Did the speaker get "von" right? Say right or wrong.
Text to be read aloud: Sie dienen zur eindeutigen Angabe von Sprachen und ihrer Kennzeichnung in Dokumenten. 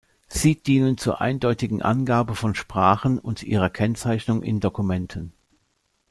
right